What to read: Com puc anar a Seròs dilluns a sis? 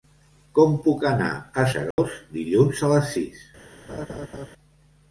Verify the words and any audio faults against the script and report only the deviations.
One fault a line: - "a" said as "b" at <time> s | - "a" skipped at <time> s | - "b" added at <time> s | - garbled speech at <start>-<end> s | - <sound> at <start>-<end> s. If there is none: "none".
- dropout at 1.9-2.0 s
- "les" added at 3.0 s
- laugh at 3.9-4.5 s